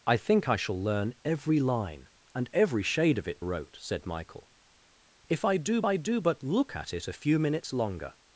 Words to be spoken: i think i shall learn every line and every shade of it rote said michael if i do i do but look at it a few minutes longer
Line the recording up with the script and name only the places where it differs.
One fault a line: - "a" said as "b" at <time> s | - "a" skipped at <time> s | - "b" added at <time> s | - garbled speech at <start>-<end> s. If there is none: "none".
none